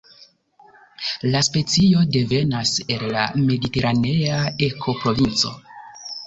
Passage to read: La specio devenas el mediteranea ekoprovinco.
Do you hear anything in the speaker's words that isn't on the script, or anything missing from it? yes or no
yes